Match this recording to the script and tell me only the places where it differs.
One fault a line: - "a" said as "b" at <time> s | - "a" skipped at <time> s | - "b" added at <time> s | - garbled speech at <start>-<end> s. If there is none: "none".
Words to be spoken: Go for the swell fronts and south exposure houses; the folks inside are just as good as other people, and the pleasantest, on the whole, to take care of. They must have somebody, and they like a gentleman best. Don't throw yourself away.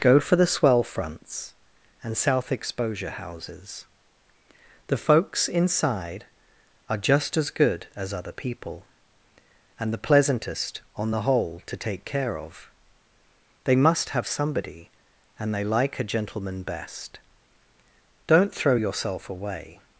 none